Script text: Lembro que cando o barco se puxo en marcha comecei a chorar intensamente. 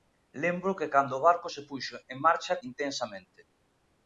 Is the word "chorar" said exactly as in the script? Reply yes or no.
no